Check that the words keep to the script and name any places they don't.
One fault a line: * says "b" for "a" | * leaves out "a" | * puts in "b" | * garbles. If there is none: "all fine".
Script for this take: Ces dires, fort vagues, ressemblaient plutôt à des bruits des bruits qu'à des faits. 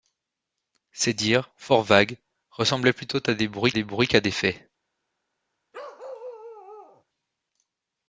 all fine